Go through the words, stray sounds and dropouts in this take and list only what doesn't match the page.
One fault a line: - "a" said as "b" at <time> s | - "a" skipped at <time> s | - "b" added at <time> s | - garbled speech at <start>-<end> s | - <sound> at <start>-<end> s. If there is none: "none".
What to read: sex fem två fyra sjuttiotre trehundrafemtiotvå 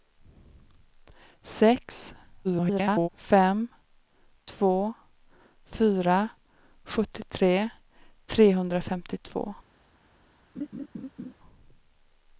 - garbled speech at 2.4-3.1 s
- laugh at 10.6-11.3 s